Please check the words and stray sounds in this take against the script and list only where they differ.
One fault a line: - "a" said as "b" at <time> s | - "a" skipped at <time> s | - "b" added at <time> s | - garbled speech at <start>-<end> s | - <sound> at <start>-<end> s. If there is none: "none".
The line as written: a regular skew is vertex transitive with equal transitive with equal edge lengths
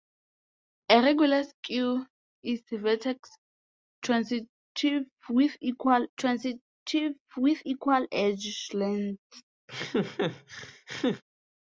- laugh at 9.7-11.2 s